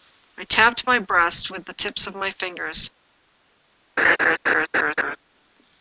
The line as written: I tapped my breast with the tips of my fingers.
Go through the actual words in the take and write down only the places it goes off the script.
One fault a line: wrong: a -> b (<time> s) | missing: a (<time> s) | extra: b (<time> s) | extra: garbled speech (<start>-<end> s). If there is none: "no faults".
no faults